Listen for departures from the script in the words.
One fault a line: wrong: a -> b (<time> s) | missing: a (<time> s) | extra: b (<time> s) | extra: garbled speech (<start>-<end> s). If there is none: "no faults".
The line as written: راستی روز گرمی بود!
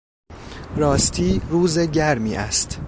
wrong: بود -> است (2.3 s)